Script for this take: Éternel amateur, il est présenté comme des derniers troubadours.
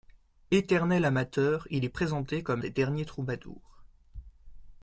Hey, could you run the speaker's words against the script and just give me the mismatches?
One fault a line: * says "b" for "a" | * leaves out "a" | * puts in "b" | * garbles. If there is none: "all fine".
all fine